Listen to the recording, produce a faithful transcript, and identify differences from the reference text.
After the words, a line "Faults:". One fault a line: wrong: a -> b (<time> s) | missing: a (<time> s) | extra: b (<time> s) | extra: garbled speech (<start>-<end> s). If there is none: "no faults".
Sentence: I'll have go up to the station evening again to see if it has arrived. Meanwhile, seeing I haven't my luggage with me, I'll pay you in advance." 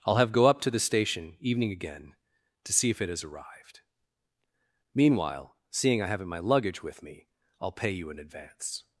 I'll have go up to the station evening again to see if it has arrived. Meanwhile, seeing I haven't my luggage with me, I'll pay you in advance."
Faults:
no faults